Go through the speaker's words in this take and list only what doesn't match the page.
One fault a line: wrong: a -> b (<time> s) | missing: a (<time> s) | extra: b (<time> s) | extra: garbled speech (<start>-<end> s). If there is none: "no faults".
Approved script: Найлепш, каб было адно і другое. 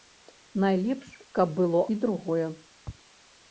missing: адно (1.8 s)